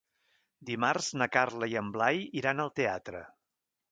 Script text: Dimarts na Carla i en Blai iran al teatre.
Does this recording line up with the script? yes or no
yes